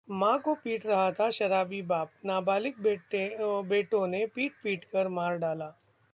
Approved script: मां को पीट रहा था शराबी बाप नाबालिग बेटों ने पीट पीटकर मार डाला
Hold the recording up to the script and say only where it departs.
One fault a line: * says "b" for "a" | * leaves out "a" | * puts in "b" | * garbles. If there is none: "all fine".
all fine